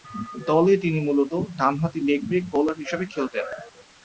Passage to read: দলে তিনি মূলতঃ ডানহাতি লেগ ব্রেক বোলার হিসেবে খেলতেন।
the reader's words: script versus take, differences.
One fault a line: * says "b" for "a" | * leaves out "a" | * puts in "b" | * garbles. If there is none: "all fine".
all fine